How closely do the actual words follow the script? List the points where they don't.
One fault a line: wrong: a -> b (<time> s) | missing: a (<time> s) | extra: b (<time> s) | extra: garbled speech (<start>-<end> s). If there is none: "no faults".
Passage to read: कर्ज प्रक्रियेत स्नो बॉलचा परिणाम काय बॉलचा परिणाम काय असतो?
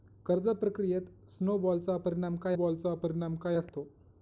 no faults